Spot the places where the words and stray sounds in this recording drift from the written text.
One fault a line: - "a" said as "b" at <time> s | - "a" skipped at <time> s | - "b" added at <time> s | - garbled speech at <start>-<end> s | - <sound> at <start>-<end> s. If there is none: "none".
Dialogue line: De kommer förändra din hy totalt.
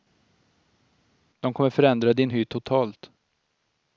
none